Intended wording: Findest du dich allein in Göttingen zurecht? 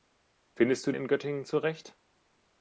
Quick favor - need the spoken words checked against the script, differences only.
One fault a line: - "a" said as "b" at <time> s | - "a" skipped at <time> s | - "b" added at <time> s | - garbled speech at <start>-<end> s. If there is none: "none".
- "dich allein" skipped at 0.9 s